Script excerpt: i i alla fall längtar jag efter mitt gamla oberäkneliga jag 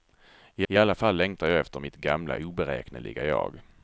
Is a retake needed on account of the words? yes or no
no